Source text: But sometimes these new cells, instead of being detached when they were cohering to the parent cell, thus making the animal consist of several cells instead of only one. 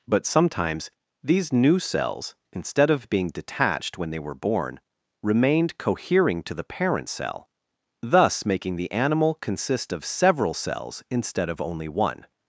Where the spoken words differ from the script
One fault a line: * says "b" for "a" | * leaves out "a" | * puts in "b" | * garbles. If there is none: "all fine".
* puts in "born remained"